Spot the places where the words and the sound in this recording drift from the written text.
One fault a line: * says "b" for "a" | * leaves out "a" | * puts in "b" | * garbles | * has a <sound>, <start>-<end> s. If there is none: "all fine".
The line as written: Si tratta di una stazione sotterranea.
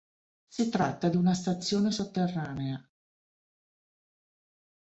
all fine